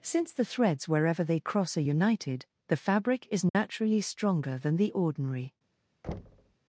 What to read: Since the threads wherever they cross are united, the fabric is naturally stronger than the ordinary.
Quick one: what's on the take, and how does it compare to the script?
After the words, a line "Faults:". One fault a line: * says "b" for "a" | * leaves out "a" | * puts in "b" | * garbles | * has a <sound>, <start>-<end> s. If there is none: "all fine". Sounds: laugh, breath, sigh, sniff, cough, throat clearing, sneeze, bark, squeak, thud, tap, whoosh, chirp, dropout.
Since the threads wherever they cross are united, the fabric is naturally stronger than the ordinary.
Faults:
* has a dropout, 3.5-3.5 s
* has a thud, 6.0-6.6 s